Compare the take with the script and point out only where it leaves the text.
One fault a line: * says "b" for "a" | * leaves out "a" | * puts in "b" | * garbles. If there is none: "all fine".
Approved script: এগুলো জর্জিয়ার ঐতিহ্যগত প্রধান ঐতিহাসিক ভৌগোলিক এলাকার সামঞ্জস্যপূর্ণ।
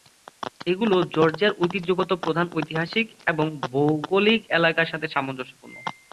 * puts in "এবং"
* puts in "সাথে"